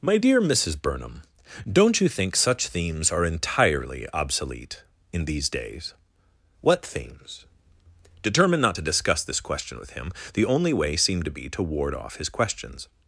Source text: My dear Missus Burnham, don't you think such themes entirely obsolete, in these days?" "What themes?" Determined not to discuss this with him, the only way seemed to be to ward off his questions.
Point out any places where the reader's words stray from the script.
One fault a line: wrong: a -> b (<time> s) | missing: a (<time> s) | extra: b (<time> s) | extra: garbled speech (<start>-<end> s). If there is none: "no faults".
extra: are (3.1 s)
extra: question (9.4 s)